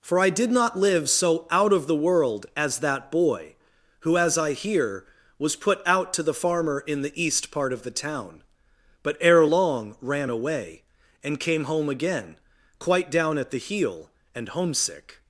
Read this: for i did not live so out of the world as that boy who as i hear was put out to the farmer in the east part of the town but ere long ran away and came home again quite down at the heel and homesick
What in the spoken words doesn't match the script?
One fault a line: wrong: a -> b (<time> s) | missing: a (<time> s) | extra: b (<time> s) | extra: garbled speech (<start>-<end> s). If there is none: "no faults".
no faults